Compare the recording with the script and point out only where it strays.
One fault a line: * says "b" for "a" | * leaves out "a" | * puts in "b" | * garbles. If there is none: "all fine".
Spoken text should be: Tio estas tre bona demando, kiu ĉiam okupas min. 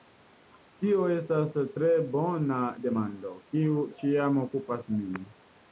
all fine